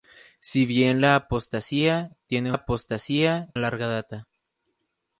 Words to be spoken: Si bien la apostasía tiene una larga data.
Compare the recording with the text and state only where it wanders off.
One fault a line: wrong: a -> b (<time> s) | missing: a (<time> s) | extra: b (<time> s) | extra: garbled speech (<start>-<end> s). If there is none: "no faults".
wrong: una -> apostasía (2.5 s)